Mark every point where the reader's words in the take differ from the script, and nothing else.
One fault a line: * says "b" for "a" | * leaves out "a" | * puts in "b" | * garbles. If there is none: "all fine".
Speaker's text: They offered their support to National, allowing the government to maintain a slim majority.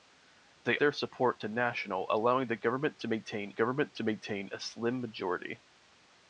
* leaves out "offered"
* puts in "government to maintain"